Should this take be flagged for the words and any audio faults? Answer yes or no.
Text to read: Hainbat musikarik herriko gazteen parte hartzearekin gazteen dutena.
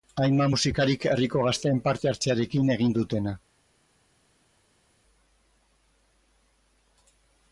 yes